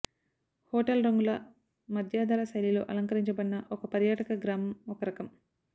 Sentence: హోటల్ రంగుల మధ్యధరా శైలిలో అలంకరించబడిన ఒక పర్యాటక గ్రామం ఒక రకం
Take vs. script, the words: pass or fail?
pass